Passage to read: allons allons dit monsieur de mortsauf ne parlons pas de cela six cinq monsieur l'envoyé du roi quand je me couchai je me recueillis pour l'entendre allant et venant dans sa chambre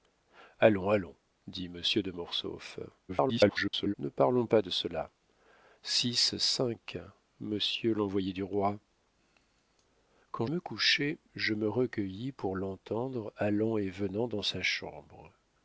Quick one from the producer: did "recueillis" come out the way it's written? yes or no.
yes